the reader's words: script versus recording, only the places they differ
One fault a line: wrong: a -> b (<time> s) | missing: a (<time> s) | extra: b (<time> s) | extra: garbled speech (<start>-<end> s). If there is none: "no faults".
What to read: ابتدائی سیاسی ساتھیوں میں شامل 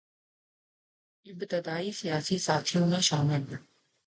no faults